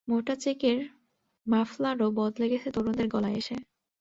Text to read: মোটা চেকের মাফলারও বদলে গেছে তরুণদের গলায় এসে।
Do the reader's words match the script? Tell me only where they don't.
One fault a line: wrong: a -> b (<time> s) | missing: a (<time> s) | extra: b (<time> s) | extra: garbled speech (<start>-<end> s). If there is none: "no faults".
no faults